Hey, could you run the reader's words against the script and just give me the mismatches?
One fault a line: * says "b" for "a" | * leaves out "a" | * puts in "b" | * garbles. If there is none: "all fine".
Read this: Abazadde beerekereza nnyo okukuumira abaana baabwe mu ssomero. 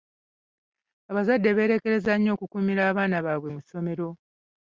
all fine